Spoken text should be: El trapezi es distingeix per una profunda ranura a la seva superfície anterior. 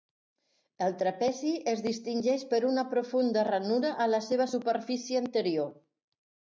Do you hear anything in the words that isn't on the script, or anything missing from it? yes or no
no